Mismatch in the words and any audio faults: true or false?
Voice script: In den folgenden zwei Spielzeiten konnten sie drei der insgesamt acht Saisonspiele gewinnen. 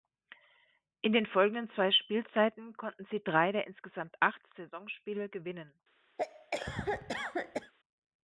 true